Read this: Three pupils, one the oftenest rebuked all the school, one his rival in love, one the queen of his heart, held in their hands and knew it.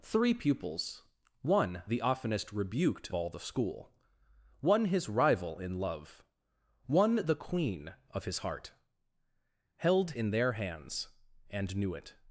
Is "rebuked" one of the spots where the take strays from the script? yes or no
no